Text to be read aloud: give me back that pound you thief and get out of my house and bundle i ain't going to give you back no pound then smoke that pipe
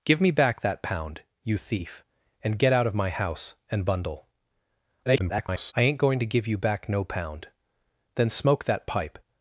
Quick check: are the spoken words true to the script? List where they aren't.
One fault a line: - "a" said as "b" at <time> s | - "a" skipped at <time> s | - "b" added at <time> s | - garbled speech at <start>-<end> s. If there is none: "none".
- garbled speech at 5.1-5.7 s